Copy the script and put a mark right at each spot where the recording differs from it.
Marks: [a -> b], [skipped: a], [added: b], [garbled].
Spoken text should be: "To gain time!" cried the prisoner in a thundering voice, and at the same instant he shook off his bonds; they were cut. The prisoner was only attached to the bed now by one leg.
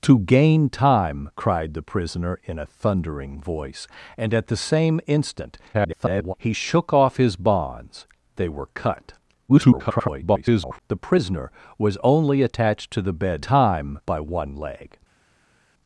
"To gain time!" cried the prisoner in a thundering voice, and at the same instant [garbled] he shook off his bonds; they were cut. [garbled] The prisoner was only attached to the bed [now -> time] by one leg.